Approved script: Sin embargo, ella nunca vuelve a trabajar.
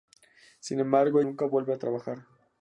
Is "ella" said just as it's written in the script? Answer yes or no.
no